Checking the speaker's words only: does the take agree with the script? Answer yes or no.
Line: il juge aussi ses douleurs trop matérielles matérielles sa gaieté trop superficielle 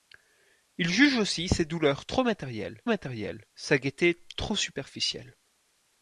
yes